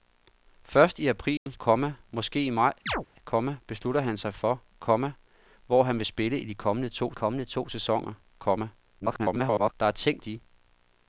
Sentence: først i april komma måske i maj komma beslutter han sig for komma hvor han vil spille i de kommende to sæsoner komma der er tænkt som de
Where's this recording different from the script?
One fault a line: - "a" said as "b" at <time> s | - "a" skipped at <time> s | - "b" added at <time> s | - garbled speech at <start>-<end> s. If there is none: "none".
- "kommende to" added at 7.1 s
- garbled speech at 9.0-9.7 s
- "som" skipped at 10.2 s